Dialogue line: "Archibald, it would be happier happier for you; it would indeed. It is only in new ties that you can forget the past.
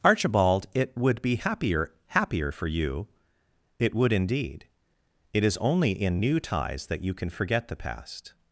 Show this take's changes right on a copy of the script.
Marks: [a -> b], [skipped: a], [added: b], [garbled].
"Archibald, it would be happier happier for you; it would indeed. It is only in new ties that you can forget the past.